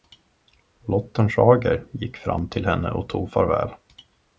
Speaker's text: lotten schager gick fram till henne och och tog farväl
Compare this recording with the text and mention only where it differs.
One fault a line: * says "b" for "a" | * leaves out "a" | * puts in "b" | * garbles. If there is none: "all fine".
* leaves out "och"